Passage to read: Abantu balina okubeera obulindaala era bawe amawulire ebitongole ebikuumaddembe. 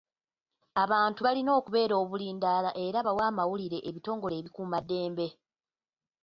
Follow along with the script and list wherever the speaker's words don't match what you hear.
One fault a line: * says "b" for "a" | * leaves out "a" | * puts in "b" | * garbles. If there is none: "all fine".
all fine